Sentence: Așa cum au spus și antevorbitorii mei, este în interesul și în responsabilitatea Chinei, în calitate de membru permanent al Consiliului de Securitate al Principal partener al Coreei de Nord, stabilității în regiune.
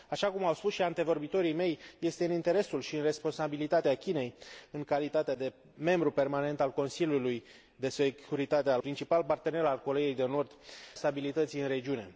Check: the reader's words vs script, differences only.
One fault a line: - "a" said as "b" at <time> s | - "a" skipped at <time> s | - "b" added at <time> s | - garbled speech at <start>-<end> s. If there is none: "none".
none